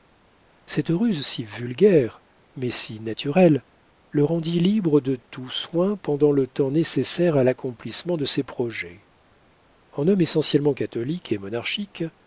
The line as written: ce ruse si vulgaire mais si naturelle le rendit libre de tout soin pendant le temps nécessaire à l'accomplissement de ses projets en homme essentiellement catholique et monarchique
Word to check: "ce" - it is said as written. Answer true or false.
false